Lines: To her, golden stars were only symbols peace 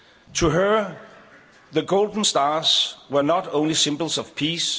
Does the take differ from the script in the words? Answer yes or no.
yes